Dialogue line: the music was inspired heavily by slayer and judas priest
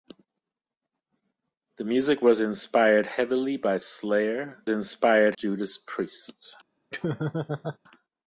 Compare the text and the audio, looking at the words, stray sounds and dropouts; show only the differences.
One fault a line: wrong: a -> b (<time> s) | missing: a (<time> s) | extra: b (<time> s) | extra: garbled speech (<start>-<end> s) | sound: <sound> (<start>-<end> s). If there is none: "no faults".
wrong: and -> inspired (4.7 s)
sound: laugh (6.9-7.8 s)